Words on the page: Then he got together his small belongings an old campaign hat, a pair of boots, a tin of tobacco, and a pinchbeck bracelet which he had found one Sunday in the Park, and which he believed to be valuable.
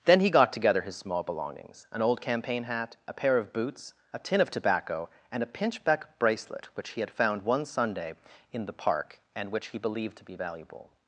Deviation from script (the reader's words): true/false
false